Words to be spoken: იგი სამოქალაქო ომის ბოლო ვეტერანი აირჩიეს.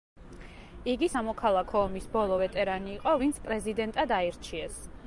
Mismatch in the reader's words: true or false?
true